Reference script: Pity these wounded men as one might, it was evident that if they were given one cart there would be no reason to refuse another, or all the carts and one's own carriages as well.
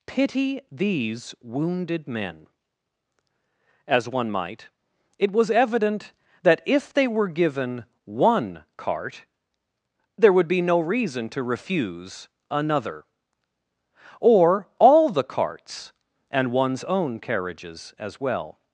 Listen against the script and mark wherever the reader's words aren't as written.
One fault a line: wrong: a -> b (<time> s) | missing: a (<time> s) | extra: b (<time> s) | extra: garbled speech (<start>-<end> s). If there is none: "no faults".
no faults